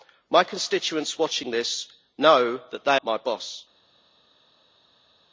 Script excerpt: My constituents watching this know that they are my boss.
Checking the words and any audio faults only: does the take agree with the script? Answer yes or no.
no